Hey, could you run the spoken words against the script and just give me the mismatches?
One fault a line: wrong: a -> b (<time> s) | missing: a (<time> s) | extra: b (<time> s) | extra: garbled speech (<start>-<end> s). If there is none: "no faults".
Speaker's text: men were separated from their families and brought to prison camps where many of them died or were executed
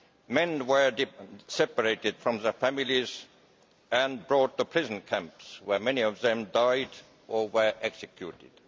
no faults